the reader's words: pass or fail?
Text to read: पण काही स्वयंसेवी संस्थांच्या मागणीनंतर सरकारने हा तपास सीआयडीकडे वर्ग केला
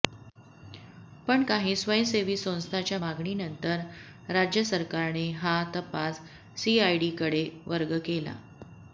fail